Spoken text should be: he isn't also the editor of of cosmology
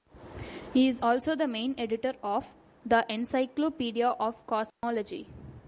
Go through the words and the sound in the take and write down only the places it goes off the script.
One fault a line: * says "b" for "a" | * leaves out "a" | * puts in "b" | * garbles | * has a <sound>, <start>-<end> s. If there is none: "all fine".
* says "is" for "isn't"
* puts in "main"
* puts in "the encyclopedia"
* has a dropout, 4.7-4.8 s